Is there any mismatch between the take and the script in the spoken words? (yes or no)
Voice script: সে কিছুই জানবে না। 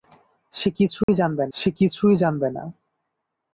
yes